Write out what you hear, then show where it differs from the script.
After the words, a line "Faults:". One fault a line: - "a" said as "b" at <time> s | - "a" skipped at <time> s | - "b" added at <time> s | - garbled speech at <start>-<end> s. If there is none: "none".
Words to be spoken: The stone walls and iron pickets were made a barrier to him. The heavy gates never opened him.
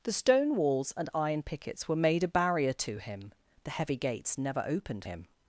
The stone walls and iron pickets were made a barrier to him. The heavy gates never opened him.
Faults:
none